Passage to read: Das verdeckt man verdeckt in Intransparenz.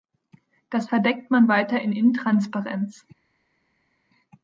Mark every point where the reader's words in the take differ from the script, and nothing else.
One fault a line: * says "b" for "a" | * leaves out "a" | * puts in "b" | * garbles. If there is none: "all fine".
* says "weiter" for "verdeckt"